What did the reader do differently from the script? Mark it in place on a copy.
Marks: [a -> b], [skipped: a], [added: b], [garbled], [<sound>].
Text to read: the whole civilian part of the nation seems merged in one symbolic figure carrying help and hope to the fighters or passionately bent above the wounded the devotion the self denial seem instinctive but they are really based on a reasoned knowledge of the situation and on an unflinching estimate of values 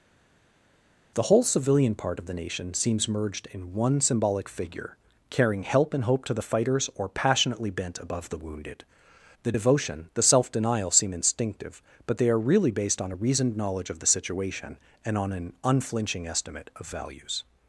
the whole civilian part of the nation seems merged in one symbolic figure carrying help and hope to the fighters or passionately bent above the wounded the devotion the self denial seem instinctive but they are really based on a reasoned knowledge of the situation and on an unflinching estimate of values